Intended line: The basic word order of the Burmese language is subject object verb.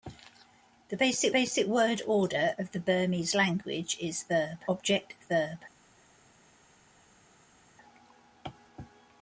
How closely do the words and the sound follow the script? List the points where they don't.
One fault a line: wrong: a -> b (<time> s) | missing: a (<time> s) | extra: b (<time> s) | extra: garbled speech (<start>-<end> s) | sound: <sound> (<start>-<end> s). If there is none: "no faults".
extra: basic (1.3 s)
wrong: subject -> verb (4.3 s)